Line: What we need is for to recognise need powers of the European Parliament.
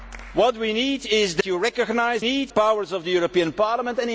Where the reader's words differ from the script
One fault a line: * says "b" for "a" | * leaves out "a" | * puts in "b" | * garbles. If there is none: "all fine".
all fine